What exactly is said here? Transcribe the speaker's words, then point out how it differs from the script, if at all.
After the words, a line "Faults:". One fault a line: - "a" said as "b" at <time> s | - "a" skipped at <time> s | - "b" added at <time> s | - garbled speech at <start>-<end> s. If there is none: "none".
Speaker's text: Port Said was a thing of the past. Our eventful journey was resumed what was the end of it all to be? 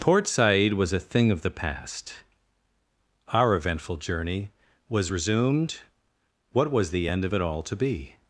Port Said was a thing of the past. Our eventful journey was resumed what was the end of it all to be?
Faults:
none